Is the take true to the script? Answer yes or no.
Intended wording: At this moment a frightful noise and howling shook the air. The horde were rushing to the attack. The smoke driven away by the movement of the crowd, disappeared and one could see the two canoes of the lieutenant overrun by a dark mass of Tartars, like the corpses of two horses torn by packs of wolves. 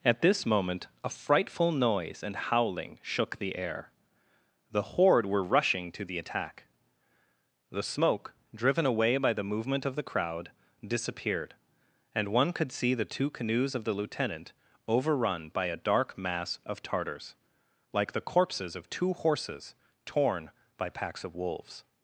yes